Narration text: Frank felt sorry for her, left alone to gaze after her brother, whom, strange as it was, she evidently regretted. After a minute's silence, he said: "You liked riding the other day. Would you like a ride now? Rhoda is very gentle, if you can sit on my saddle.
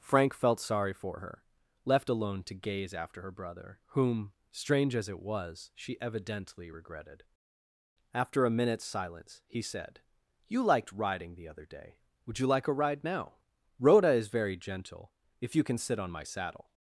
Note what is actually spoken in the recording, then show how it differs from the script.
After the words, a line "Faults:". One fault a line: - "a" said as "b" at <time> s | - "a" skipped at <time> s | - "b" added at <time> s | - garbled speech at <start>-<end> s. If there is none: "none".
Frank felt sorry for her, left alone to gaze after her brother, whom, strange as it was, she evidently regretted. After a minute's silence, he said: "You liked riding the other day. Would you like a ride now? Rhoda is very gentle, if you can sit on my saddle.
Faults:
none